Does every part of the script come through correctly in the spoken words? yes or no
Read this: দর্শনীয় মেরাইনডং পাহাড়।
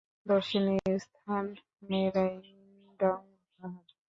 no